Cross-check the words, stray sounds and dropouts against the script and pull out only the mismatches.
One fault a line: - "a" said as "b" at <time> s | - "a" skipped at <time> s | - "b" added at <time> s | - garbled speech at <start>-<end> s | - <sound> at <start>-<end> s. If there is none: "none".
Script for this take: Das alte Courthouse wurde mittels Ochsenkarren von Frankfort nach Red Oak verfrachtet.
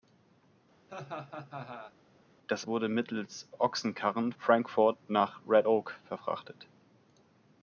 - laugh at 0.9-2.0 s
- "alte Courthouse" skipped at 2.7 s
- "von" skipped at 4.3 s